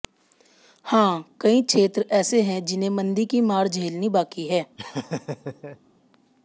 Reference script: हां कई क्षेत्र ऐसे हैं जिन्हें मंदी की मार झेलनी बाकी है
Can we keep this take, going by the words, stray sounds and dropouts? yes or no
no